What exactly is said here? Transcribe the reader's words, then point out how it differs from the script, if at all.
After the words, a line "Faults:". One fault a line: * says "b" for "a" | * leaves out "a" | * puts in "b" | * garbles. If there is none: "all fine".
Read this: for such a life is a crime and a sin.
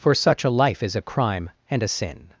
for such a life is a crime and a sin.
Faults:
all fine